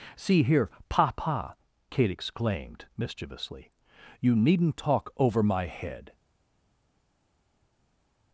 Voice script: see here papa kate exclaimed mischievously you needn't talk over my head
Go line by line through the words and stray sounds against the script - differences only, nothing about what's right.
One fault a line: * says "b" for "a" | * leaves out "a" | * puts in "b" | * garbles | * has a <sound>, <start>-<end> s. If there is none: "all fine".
all fine